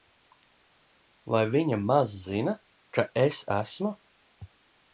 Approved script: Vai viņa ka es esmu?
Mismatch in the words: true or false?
true